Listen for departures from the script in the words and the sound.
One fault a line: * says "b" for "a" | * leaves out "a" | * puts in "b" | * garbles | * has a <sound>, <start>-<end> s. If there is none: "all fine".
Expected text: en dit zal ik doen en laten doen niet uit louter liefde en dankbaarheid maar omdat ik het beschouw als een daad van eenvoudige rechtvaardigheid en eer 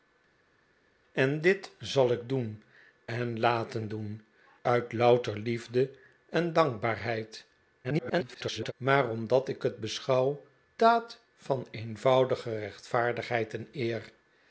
* leaves out "niet"
* garbles
* leaves out "als een"